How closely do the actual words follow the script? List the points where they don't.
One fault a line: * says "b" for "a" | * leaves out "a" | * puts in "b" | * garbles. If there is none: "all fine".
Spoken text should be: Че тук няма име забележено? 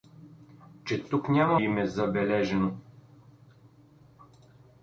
all fine